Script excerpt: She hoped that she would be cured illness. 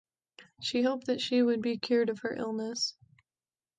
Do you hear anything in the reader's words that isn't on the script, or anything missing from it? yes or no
yes